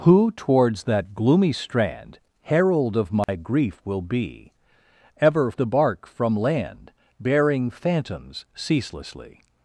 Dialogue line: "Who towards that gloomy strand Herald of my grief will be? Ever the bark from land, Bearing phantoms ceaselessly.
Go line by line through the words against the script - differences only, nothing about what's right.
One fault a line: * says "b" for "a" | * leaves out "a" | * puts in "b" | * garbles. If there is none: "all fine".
all fine